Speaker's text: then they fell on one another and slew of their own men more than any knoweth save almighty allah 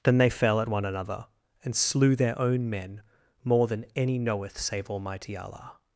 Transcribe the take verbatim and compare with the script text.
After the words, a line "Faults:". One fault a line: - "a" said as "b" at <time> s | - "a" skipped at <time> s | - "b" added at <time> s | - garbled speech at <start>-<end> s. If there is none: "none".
then they fell at one another and slew their own men more than any knoweth save almighty allah
Faults:
- "on" said as "at" at 0.6 s
- "of" skipped at 2.1 s